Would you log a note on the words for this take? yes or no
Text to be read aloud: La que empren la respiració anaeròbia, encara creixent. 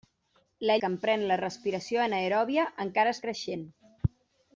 no